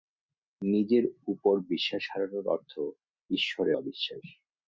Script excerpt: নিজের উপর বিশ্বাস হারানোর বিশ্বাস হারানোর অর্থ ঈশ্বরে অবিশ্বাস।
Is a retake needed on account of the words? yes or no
yes